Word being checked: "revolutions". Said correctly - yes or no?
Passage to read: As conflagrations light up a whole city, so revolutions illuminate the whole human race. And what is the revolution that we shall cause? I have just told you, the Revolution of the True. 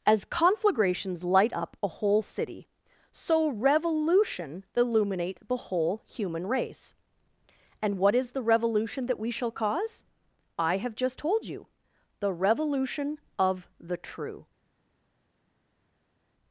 no